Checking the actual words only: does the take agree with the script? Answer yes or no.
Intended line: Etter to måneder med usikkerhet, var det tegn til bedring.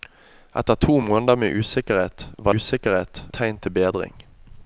no